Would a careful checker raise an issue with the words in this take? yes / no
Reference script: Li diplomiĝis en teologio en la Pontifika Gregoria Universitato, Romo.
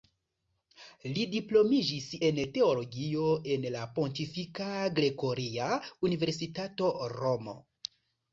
no